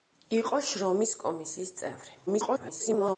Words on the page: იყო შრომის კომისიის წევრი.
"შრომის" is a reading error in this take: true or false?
false